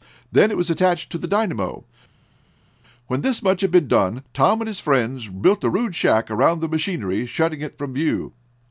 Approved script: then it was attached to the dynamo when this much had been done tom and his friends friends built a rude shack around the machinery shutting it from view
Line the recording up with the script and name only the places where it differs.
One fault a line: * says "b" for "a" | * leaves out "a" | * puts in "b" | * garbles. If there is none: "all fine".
* leaves out "friends"